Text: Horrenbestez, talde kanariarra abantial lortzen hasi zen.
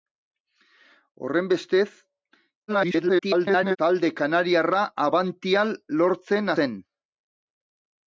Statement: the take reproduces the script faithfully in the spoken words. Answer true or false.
false